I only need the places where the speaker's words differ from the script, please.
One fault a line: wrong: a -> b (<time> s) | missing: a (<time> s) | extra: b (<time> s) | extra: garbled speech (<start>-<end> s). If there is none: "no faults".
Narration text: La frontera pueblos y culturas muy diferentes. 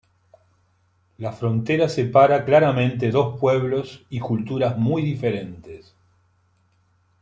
extra: separa claramente dos (1.9 s)